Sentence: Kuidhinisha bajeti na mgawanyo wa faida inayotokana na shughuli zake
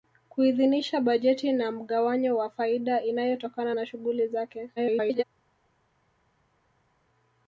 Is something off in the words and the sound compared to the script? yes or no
yes